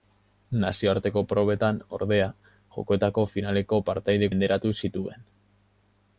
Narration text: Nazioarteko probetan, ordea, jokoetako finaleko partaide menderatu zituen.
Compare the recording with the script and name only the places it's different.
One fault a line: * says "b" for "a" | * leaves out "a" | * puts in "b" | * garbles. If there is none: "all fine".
all fine